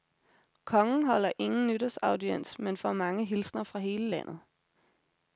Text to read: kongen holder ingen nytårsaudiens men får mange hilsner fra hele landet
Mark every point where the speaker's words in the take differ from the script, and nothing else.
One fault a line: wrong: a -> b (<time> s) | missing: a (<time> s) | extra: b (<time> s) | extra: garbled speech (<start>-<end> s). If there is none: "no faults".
no faults